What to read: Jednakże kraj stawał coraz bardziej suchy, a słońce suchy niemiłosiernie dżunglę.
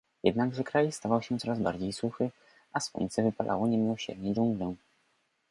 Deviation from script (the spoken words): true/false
true